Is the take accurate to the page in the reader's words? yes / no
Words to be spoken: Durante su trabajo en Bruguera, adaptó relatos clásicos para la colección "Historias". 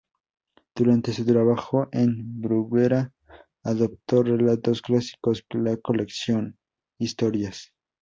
no